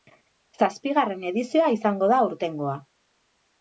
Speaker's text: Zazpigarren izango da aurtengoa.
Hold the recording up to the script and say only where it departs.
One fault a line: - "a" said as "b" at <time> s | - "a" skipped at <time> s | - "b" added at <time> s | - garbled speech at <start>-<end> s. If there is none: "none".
- "edizioa" added at 1.3 s